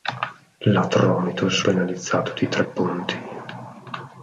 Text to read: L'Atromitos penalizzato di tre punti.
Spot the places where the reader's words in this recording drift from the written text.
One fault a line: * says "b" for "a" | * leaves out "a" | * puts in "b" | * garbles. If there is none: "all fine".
all fine